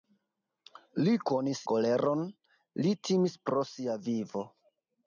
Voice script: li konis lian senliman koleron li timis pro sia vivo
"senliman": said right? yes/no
no